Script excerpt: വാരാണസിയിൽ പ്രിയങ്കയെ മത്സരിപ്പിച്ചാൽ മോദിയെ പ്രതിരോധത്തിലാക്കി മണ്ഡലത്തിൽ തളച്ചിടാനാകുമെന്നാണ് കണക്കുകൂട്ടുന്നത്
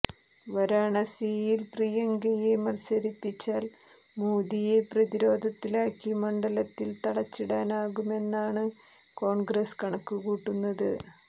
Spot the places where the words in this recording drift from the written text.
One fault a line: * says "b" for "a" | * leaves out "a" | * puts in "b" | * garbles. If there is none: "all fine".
* puts in "കോൺഗ്രസ്"